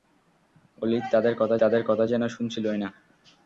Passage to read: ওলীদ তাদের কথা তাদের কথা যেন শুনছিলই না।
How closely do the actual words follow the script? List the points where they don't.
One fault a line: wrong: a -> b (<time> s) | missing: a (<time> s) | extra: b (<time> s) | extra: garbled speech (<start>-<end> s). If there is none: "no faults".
no faults